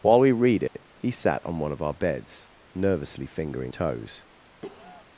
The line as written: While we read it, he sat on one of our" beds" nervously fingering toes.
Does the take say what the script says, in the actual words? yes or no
yes